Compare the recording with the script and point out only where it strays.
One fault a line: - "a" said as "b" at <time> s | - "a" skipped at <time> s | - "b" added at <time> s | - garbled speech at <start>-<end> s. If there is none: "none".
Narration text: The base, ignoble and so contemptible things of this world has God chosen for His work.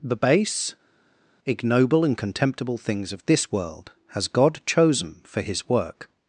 - "so" skipped at 2.1 s